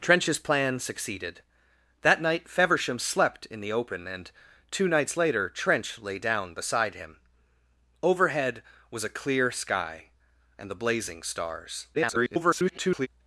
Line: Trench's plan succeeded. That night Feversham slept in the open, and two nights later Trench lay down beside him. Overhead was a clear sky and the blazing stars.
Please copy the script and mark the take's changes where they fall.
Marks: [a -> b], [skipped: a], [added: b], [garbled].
Trench's plan succeeded. That night Feversham slept in the open, and two nights later Trench lay down beside him. Overhead was a clear sky and the blazing stars. [garbled]